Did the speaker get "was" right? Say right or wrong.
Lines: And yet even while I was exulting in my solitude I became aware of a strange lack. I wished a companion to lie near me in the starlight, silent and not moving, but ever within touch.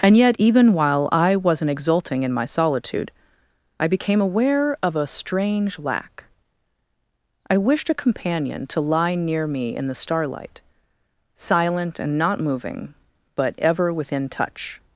wrong